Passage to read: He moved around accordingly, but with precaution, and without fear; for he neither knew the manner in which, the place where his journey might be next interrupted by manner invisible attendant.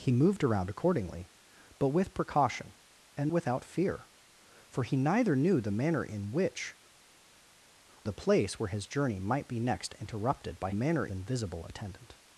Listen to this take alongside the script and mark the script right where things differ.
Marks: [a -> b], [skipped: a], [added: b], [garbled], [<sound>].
He moved around accordingly, but with precaution, and without fear; for he neither knew the manner in which, the place where his journey might be next interrupted by manner invisible attendant.